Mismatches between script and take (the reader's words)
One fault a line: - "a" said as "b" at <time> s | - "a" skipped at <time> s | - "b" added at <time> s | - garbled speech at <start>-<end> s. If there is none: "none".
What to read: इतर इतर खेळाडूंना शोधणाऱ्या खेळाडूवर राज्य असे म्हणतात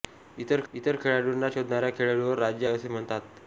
none